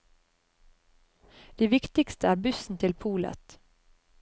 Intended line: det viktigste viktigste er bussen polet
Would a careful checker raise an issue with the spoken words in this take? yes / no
yes